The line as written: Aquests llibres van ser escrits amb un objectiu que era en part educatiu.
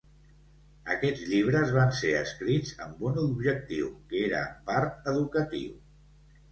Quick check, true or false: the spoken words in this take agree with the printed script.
true